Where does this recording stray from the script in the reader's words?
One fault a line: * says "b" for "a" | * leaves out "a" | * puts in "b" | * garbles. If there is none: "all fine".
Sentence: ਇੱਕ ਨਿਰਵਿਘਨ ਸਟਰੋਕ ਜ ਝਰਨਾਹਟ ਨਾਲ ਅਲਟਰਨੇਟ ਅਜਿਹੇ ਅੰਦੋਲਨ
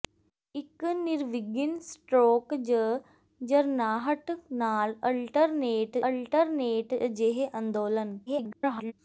* puts in "ਅਲਟਰਨੇਟ"
* garbles